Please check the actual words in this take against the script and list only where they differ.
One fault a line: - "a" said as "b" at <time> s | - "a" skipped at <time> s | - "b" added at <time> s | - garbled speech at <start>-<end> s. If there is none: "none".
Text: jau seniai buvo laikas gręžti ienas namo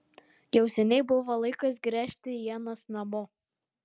none